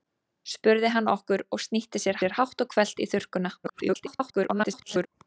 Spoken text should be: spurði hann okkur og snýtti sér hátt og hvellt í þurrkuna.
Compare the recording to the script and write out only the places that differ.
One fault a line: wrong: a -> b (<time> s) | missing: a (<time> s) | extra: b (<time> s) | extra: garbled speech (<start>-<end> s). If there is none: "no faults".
extra: sér (2.2 s)
extra: garbled speech (3.6-5.1 s)